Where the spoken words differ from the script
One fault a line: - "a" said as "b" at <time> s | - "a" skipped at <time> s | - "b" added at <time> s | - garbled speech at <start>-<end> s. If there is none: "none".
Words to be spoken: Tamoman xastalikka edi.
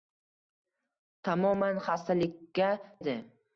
none